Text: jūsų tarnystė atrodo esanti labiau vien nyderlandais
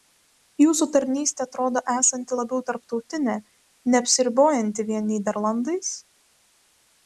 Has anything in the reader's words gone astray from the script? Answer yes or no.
yes